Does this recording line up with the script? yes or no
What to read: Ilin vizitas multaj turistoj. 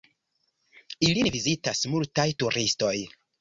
yes